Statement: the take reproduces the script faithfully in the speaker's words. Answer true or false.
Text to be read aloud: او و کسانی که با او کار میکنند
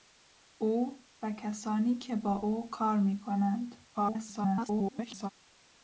false